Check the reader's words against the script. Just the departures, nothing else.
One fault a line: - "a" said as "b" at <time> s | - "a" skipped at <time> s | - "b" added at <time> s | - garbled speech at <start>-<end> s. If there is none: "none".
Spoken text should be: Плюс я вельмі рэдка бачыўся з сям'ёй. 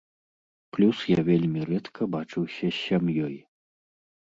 none